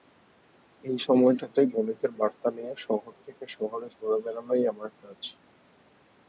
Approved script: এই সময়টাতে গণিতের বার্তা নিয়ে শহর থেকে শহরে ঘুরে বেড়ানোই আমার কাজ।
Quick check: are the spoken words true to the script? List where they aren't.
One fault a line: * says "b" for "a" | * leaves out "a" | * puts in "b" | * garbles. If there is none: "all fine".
all fine